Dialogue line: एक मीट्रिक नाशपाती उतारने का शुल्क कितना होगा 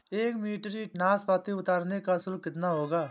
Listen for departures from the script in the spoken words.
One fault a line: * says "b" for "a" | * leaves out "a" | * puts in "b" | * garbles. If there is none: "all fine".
all fine